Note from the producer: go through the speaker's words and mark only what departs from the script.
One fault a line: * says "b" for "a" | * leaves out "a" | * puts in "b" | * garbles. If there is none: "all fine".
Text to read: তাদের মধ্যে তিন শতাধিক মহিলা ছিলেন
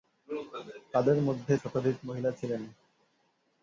* leaves out "তিন"